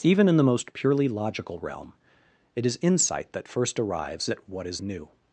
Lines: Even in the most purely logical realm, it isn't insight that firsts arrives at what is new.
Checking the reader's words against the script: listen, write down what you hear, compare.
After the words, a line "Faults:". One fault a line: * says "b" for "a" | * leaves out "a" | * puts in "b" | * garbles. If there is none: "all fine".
Even in the most purely logical realm, it is insight that first arrives at what is new.
Faults:
* says "is" for "isn't"
* says "first" for "firsts"